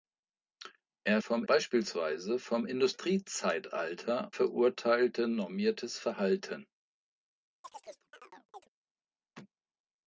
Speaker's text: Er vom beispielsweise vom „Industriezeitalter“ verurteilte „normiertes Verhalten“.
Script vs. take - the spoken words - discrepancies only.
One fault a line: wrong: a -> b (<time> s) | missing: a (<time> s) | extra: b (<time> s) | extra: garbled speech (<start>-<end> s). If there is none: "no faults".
no faults